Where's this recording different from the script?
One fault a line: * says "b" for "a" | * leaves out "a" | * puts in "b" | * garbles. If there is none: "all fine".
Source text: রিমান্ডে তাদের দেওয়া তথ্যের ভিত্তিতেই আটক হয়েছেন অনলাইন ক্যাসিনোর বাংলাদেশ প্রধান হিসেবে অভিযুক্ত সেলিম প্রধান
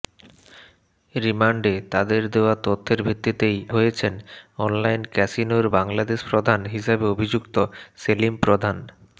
* leaves out "আটক"